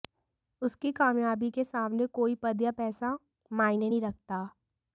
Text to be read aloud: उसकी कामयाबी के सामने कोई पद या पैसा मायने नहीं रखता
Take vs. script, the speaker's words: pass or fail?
pass